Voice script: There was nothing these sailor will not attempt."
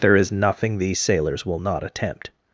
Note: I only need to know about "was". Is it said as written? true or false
false